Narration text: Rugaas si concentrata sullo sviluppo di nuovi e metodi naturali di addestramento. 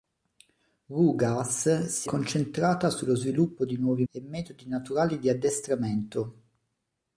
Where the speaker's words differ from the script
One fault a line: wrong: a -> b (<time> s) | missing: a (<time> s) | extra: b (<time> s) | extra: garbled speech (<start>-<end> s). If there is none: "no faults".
no faults